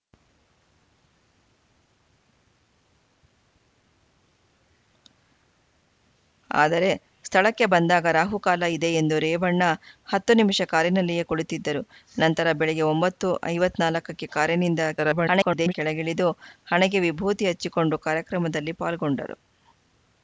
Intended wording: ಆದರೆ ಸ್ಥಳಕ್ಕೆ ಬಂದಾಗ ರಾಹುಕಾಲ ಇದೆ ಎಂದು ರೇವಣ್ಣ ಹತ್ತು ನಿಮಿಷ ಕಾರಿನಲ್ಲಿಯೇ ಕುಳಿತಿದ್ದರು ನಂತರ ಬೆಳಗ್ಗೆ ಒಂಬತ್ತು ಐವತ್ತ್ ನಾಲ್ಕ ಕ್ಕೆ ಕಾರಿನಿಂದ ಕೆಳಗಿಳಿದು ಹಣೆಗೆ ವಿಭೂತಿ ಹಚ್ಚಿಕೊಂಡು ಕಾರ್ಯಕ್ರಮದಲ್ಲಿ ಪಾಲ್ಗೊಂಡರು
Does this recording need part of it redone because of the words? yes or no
yes